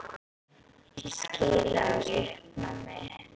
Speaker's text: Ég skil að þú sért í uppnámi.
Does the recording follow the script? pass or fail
fail